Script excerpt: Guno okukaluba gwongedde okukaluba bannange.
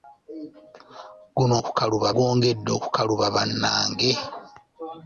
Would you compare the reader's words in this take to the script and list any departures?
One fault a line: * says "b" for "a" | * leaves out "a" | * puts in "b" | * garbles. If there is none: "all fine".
all fine